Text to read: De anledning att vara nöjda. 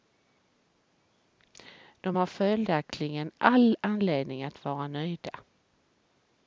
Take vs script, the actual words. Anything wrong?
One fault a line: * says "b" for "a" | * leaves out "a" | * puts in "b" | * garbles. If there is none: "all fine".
* puts in "har följaktligen all"